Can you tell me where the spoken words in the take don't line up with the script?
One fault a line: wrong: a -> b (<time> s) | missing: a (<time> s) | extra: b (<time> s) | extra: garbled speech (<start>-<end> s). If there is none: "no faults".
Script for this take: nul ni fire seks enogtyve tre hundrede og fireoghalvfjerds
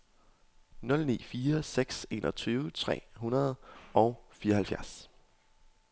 no faults